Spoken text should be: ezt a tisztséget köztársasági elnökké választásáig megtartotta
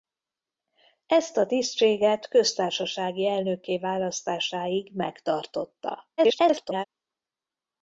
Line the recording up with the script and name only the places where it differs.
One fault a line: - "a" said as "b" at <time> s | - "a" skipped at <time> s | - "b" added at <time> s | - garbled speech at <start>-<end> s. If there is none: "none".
- garbled speech at 6.2-6.9 s